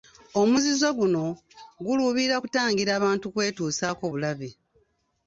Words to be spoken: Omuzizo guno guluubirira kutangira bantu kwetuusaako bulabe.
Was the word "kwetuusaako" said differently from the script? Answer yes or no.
no